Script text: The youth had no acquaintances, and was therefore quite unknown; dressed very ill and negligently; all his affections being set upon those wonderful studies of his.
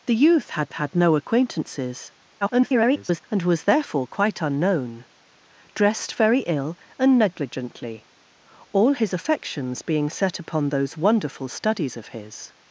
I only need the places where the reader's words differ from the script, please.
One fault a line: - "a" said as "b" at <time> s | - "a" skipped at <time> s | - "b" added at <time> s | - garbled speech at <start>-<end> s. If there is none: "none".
- "had" added at 0.7 s
- garbled speech at 2.4-3.2 s